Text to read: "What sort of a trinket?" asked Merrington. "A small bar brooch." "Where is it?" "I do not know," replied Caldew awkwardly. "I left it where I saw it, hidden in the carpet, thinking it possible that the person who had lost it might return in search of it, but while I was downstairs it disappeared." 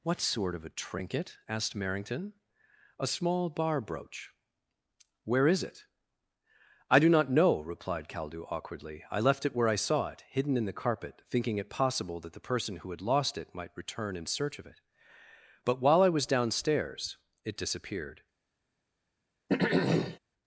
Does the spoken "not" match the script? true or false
true